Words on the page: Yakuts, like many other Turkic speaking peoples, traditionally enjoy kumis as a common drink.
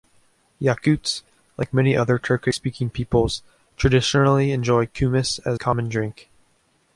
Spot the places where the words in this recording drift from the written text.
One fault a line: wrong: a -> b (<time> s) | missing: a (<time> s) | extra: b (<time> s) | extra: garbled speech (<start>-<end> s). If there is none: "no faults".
missing: a (5.6 s)